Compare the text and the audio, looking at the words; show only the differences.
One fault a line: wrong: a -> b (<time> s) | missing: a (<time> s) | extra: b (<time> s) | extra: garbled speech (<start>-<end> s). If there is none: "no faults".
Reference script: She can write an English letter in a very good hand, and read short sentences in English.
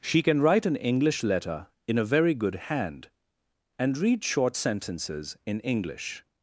no faults